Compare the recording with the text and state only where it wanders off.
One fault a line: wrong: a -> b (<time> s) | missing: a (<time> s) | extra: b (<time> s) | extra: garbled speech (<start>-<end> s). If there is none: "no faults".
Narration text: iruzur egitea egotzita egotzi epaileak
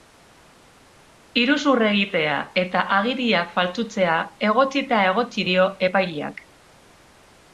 extra: eta agiriak faltsutzea (2.6 s)
extra: dio (5.5 s)